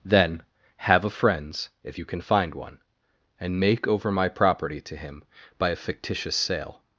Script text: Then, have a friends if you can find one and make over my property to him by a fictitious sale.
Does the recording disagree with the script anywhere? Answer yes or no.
no